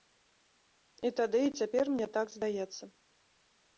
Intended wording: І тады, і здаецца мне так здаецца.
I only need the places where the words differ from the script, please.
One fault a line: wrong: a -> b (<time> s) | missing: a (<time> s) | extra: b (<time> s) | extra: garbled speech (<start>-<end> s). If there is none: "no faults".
wrong: здаецца -> цяпер (1.6 s)